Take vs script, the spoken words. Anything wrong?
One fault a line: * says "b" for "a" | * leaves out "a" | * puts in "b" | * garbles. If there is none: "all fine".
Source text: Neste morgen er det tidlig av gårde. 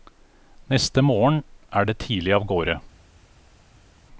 all fine